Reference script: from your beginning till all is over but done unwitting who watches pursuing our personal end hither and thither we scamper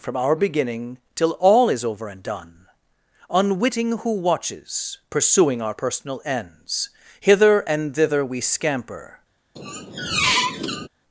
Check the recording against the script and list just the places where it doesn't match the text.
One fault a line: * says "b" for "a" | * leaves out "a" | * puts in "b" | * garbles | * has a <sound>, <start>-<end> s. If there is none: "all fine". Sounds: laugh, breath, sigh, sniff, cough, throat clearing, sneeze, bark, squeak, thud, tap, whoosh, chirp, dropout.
* says "our" for "your"
* says "and" for "but"
* says "ends" for "end"
* has a squeak, 9.6-10.9 s